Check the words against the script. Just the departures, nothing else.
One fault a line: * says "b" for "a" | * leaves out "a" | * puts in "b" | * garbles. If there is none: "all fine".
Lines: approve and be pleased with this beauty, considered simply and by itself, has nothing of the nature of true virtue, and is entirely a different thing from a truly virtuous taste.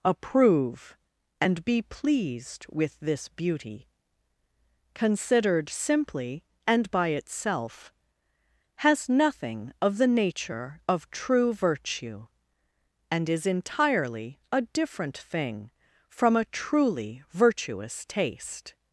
all fine